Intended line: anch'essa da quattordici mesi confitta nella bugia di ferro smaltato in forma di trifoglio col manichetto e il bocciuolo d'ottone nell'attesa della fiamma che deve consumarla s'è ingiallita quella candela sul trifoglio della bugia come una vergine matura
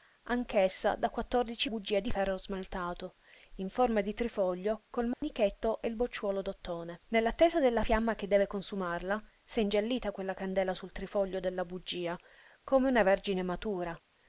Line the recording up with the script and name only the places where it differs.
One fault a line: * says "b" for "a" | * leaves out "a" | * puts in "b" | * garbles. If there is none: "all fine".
* leaves out "mesi confitta nella"